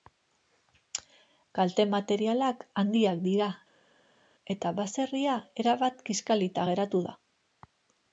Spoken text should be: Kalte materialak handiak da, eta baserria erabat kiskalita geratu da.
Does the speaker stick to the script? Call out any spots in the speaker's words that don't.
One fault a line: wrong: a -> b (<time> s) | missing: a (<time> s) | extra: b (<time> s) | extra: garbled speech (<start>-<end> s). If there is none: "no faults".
wrong: da -> dira (3.3 s)